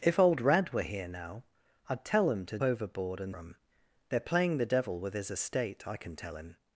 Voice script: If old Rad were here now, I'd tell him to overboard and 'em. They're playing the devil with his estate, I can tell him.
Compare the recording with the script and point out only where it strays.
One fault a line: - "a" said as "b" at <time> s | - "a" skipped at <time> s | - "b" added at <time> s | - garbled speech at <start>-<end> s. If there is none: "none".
none